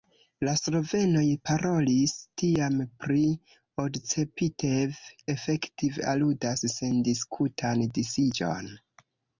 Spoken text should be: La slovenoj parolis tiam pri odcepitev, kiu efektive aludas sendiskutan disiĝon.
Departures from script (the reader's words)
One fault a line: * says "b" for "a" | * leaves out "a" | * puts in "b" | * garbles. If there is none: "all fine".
* leaves out "kiu"